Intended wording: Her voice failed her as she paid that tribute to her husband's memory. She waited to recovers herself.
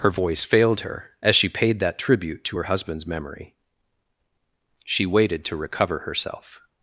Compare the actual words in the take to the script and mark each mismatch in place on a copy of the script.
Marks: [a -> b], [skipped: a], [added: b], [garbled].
Her voice failed her as she paid that tribute to her husband's memory. She waited to [recovers -> recover] herself.